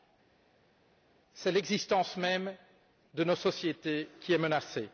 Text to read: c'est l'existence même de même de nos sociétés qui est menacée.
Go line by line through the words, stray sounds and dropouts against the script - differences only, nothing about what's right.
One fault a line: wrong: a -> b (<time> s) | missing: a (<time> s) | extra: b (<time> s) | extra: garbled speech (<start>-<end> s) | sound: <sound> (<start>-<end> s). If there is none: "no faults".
missing: même de (3.2 s)